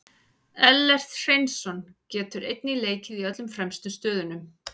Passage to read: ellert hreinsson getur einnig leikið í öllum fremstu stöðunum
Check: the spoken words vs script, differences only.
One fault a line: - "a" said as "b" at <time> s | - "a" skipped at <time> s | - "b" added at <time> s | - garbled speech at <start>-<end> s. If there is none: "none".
none